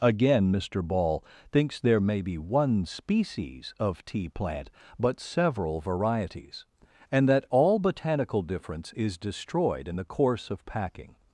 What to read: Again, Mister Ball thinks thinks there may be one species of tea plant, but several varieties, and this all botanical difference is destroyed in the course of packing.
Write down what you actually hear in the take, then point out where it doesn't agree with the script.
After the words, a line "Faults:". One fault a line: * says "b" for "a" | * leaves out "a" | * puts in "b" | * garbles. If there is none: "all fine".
Again, Mister Ball thinks there may be one species of tea plant, but several varieties, and that all botanical difference is destroyed in the course of packing.
Faults:
* leaves out "thinks"
* says "that" for "this"